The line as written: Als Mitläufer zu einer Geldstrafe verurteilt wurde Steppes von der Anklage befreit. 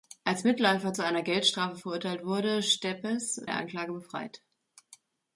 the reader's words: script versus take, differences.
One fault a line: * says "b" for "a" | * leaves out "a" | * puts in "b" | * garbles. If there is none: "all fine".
* leaves out "von"